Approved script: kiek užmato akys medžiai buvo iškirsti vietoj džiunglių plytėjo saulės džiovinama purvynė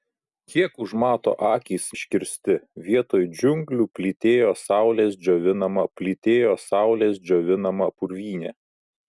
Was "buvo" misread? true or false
true